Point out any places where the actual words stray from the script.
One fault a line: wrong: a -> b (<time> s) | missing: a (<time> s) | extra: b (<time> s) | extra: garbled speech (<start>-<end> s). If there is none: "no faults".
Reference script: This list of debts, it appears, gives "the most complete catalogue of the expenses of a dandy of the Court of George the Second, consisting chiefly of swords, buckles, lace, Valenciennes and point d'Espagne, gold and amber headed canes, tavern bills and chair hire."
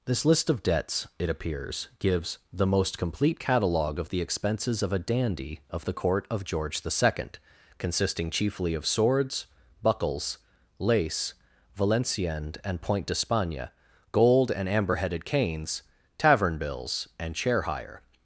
no faults